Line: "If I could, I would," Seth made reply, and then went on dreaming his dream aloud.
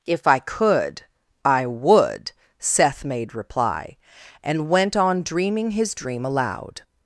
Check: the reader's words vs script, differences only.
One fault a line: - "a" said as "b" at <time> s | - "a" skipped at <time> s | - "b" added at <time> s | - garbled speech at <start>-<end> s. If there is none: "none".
- "then" skipped at 4.7 s